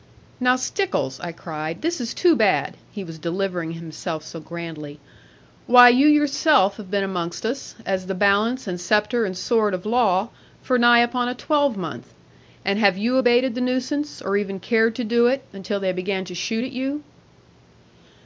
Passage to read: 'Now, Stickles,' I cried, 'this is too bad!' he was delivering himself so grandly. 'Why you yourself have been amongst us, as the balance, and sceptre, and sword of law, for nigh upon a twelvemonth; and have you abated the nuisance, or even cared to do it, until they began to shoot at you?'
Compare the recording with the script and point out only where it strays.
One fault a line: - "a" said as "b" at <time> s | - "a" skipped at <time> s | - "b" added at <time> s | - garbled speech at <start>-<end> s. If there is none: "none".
none